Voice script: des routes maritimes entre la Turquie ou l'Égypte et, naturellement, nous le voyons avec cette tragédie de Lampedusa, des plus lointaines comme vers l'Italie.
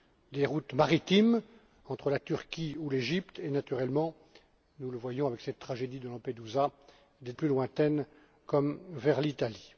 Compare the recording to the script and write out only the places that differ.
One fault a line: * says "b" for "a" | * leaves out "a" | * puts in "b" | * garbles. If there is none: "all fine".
all fine